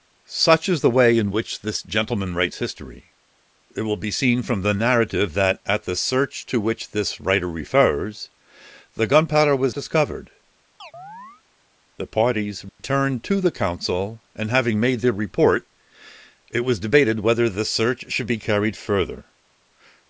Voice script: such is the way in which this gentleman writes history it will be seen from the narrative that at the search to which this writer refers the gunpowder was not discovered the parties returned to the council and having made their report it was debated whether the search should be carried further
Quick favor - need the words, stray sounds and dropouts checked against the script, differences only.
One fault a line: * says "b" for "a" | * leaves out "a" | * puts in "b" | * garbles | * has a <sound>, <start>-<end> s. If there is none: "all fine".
* leaves out "not"
* has a chirp, 10.8-11.4 s
* has a dropout, 12.7-12.8 s